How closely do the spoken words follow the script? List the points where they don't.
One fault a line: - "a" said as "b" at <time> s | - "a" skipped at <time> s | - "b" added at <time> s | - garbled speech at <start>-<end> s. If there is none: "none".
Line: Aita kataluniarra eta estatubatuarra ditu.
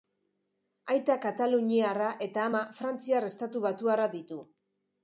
- "ama frantziar" added at 2.5 s